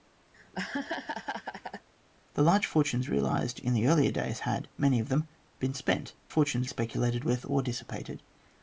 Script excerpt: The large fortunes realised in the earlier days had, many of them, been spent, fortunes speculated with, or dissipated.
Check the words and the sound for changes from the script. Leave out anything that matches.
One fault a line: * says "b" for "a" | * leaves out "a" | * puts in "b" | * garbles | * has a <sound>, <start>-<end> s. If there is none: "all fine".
* has a laugh, 0.3-1.9 s